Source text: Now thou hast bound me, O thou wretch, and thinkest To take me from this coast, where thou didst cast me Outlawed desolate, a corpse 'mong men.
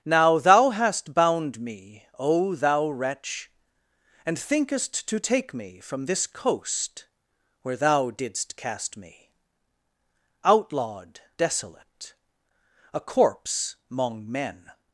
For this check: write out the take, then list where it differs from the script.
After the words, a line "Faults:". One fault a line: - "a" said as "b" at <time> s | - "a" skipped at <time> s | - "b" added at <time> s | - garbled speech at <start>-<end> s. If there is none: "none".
Now thou hast bound me, O thou wretch, and thinkest To take me from this coast, where thou didst cast me Outlawed desolate, a corpse 'mong men.
Faults:
none